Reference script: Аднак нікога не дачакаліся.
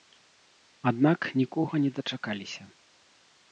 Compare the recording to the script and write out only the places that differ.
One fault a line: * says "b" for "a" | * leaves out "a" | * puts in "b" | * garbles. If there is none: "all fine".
all fine